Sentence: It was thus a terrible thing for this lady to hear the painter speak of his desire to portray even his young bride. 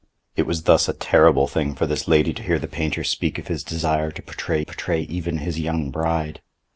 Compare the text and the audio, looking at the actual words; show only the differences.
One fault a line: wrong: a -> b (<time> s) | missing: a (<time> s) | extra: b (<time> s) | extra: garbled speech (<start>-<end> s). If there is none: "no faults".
extra: portray (4.6 s)